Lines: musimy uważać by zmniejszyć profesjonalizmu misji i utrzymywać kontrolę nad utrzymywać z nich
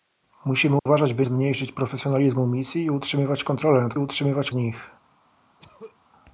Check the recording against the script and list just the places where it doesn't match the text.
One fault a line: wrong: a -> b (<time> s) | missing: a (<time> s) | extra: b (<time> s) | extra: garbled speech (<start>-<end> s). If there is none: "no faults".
no faults